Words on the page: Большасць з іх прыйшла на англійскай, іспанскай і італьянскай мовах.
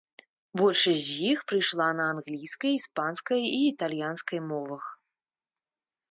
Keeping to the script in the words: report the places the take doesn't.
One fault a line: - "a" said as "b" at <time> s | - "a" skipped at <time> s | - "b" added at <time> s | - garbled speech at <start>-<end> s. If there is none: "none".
none